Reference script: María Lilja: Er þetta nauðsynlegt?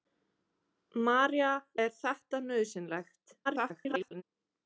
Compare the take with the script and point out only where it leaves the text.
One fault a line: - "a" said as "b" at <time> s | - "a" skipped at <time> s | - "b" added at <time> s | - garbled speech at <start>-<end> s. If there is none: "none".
- "Lilja" skipped at 1.5 s
- garbled speech at 3.4-4.2 s